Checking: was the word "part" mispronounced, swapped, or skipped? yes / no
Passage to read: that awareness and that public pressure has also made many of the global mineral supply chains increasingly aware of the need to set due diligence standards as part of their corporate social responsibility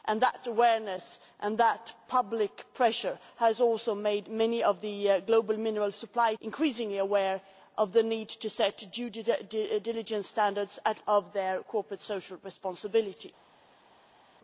yes